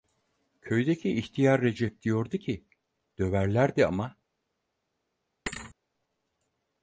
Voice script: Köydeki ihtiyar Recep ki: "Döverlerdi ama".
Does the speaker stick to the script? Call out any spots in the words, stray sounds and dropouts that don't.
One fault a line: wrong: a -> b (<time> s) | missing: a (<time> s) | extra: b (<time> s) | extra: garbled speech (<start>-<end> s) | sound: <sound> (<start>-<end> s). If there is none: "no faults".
extra: diyordu (2.0 s)
sound: thud (5.5-5.7 s)